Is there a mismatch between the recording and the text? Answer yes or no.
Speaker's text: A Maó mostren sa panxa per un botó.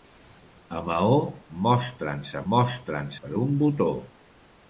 yes